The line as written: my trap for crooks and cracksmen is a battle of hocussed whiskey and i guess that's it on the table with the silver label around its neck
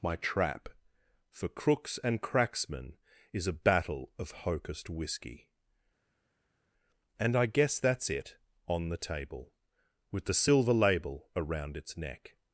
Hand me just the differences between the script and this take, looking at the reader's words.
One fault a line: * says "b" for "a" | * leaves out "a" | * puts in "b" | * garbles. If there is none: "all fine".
all fine